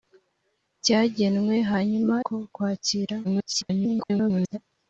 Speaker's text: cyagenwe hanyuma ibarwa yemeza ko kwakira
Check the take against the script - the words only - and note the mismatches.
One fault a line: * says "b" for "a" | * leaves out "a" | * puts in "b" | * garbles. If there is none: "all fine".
* leaves out "ibarwa yemeza"
* garbles